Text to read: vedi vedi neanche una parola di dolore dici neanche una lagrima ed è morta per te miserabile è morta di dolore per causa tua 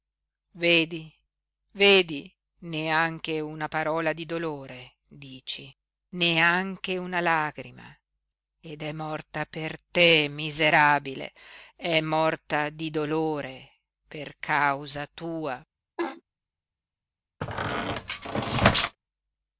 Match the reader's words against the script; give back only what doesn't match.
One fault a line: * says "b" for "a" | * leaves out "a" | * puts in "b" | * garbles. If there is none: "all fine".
all fine